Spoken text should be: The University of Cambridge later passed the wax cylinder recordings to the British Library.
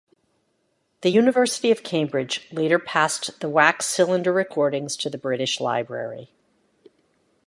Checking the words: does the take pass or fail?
pass